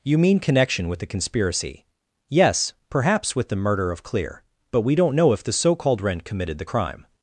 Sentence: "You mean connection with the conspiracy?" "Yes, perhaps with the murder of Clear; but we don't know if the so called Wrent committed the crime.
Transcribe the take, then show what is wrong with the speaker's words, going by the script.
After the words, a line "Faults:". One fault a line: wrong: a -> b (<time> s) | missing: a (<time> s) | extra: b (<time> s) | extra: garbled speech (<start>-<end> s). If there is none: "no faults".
"You mean connection with the conspiracy?" "Yes, perhaps with the murder of Clear; but we don't know if the so called Wrent committed the crime.
Faults:
no faults